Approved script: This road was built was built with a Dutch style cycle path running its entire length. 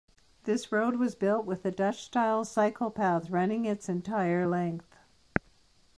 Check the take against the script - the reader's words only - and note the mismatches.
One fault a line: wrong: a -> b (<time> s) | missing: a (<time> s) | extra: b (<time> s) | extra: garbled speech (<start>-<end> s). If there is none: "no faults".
missing: was built (1.4 s)